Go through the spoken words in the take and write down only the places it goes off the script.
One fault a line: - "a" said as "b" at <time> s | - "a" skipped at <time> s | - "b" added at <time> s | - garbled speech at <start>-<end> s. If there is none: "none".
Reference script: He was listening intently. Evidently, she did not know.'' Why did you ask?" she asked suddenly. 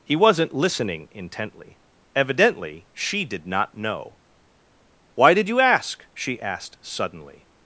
- "was" said as "wasn't" at 0.1 s